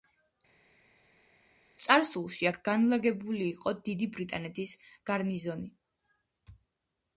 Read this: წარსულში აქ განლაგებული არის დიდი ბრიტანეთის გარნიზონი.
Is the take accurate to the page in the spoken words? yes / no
no